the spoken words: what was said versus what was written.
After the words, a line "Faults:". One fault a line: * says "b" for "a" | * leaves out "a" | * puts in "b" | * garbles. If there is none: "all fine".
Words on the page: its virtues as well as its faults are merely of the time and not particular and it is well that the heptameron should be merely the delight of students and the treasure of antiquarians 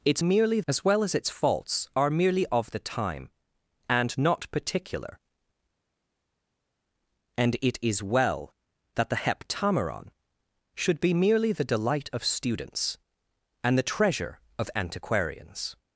its merely as well as its faults are merely of the time and not particular and it is well that the heptameron should be merely the delight of students and the treasure of antiquarians
Faults:
* says "merely" for "virtues"